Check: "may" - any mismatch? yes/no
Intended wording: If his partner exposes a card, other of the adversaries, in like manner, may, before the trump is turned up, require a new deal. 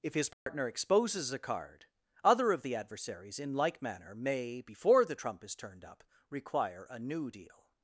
no